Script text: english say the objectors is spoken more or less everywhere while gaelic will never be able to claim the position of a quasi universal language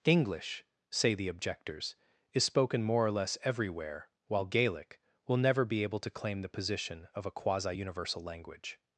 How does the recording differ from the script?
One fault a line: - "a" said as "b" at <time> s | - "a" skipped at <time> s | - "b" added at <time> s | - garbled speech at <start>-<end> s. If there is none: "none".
none